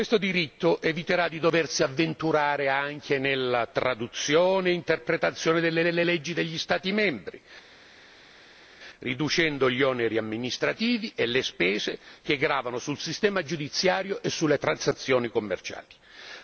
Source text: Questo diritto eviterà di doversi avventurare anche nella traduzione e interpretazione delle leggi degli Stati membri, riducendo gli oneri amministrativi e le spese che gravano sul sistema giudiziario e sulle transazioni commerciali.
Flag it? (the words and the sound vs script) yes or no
yes